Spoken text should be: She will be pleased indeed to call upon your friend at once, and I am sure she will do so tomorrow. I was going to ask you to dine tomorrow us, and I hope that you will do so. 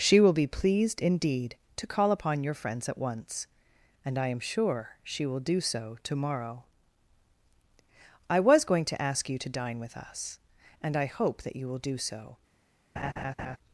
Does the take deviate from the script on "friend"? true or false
true